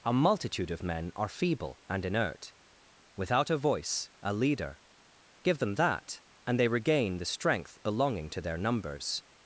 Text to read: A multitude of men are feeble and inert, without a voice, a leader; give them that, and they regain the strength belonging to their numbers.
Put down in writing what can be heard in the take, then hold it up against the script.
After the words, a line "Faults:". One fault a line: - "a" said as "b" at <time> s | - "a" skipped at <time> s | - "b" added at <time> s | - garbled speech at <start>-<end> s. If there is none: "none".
A multitude of men are feeble and inert, without a voice, a leader; give them that, and they regain the strength belonging to their numbers.
Faults:
none